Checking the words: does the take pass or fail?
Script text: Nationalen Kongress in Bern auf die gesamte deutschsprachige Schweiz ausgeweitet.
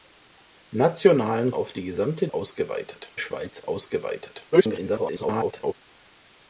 fail